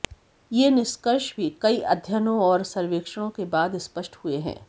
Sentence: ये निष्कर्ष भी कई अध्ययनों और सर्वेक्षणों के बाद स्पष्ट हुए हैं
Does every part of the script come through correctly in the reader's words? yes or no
yes